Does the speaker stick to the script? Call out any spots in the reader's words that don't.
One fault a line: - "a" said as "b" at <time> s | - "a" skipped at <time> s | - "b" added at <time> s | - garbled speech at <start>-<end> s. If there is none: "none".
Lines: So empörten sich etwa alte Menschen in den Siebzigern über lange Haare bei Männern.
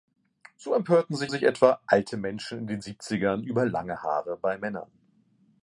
- "sich" added at 1.3 s